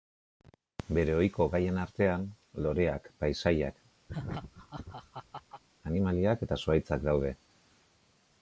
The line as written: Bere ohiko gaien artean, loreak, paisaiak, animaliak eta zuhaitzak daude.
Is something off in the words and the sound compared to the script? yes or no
yes